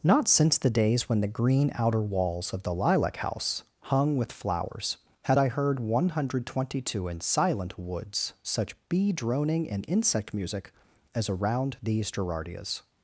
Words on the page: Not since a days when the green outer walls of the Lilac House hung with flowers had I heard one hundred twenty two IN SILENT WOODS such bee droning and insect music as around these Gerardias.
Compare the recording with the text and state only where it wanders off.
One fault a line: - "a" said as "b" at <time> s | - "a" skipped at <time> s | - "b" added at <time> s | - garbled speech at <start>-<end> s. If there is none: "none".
- "a" said as "the" at 0.6 s